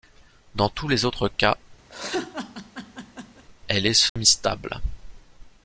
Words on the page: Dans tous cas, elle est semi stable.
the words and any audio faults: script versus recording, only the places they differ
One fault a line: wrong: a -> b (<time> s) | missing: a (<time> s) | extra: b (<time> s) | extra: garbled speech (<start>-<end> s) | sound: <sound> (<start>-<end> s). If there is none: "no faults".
extra: les autres (0.9 s)
sound: laugh (1.9-3.4 s)
sound: dropout (4.1-4.2 s)